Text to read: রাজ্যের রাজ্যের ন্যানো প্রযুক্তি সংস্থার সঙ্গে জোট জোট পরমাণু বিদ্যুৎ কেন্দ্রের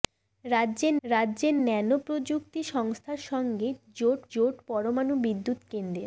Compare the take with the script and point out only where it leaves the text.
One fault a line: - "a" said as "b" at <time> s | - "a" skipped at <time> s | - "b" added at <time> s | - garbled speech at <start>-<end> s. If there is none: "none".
none